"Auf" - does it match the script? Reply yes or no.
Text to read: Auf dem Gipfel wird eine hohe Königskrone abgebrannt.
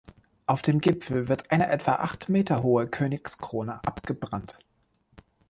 yes